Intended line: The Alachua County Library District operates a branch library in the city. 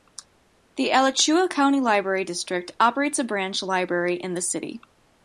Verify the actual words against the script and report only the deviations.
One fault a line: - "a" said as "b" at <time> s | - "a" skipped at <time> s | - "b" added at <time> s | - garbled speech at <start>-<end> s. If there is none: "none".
none